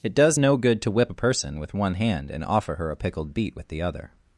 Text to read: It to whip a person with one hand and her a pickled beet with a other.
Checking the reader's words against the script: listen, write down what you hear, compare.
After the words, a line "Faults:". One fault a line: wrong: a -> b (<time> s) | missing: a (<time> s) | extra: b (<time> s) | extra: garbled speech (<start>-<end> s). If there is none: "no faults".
It does no good to whip a person with one hand and offer her a pickled beet with the other.
Faults:
extra: does no good (0.1 s)
extra: offer (2.4 s)
wrong: a -> the (3.7 s)